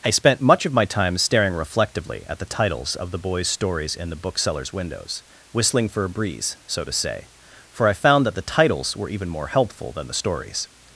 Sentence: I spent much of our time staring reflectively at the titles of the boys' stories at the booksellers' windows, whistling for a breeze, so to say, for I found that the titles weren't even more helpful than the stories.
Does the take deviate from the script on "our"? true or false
true